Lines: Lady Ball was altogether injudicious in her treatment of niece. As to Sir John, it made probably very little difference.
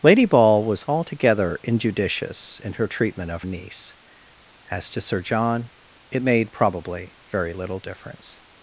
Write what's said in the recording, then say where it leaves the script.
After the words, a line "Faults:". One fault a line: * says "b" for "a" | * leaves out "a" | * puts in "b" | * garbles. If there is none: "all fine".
Lady Ball was altogether injudicious in her treatment of niece. As to Sir John, it made probably very little difference.
Faults:
all fine